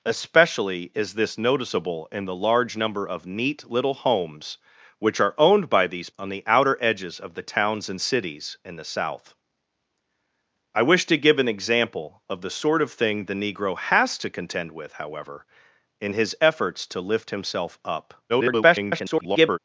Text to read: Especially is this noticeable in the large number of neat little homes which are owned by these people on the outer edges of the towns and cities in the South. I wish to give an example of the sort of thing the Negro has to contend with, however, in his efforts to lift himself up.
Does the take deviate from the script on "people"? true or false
true